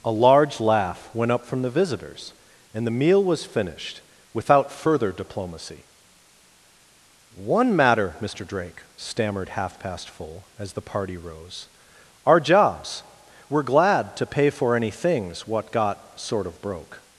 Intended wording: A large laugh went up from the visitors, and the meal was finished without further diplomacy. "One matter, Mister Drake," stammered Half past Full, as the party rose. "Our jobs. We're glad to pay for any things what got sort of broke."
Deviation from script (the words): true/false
false